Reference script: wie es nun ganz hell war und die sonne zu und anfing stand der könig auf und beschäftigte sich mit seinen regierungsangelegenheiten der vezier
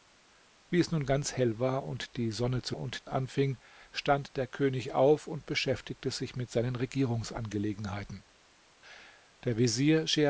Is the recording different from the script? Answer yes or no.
no